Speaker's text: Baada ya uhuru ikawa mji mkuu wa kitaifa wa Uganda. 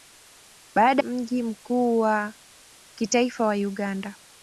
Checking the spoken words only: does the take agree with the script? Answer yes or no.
no